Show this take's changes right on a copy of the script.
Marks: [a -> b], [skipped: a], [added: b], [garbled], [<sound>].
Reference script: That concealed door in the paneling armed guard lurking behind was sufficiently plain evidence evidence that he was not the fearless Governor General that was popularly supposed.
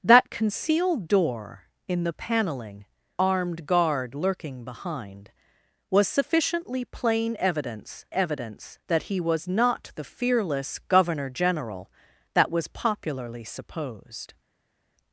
That concealed door in the paneling armed guard lurking behind was sufficiently plain evidence evidence that he was not the fearless Governor General that was popularly supposed.